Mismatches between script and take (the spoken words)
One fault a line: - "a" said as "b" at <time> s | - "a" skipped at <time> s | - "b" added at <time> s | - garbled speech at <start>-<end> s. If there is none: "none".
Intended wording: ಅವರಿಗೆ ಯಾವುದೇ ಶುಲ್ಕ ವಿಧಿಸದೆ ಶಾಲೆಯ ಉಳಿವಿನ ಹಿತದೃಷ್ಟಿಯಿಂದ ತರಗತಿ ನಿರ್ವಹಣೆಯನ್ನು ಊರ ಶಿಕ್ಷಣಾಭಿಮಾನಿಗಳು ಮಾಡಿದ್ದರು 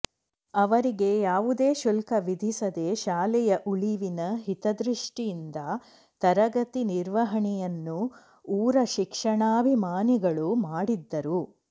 none